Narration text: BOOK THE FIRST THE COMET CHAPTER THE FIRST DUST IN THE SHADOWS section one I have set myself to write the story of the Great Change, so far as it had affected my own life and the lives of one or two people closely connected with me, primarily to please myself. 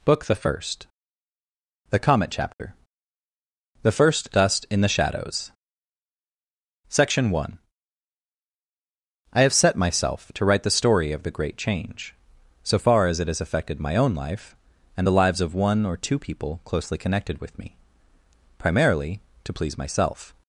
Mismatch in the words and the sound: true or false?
true